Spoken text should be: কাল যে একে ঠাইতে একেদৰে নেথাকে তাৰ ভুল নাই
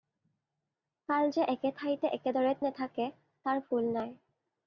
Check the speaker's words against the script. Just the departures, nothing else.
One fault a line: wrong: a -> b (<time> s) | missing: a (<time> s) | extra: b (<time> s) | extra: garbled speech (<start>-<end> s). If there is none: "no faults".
no faults